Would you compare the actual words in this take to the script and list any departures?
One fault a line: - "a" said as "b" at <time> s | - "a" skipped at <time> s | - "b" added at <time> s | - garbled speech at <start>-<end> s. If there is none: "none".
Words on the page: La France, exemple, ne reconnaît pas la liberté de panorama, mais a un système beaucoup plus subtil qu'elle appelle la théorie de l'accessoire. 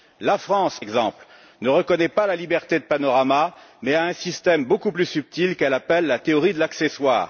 none